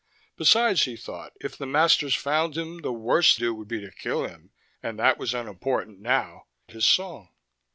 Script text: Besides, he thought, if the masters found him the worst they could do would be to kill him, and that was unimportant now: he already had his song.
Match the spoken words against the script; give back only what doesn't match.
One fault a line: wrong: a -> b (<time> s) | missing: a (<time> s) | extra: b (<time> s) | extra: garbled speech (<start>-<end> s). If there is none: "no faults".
missing: they could (3.4 s)
missing: he already had (6.5 s)